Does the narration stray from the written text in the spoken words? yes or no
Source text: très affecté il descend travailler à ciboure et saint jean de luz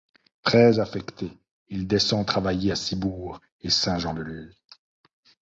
no